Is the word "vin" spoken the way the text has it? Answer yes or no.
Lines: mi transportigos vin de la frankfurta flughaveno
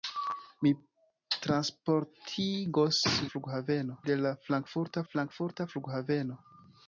no